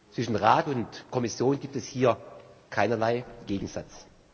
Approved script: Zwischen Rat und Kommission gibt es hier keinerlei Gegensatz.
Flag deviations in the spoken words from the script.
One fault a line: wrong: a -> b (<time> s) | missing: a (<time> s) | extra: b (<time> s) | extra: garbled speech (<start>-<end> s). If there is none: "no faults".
no faults